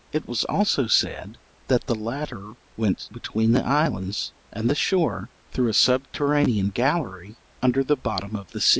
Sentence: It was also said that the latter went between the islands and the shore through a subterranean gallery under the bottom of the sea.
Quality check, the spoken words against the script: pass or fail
pass